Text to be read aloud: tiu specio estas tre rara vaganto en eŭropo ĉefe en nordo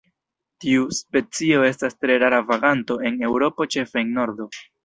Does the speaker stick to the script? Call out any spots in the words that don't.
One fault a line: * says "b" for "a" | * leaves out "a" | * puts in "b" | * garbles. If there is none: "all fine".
all fine